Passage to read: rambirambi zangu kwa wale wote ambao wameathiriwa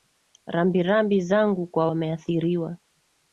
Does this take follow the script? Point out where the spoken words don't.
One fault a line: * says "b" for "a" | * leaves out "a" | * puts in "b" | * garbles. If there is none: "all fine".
* leaves out "wale wote ambao"